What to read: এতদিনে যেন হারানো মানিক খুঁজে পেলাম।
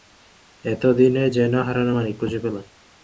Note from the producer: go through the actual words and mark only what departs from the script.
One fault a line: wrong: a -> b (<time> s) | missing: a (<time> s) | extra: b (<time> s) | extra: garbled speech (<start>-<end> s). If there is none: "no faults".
no faults